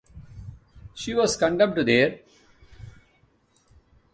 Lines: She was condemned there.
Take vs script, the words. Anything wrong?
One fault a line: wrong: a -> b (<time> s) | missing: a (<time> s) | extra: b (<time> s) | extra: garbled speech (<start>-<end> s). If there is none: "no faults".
no faults